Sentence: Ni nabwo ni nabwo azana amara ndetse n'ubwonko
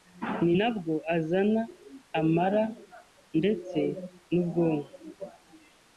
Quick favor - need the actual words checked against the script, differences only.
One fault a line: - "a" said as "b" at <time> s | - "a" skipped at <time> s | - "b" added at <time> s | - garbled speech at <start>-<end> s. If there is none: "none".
- "ni nabwo" skipped at 0.9 s